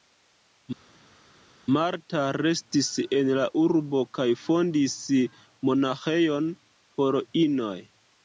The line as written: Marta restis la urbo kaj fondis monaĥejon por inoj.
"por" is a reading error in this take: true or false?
false